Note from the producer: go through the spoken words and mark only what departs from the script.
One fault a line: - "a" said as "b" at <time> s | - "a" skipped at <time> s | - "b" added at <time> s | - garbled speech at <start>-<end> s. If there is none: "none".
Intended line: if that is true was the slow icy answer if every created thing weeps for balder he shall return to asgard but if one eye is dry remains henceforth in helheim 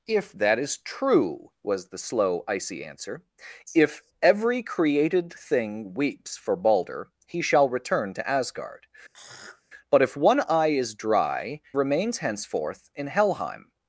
none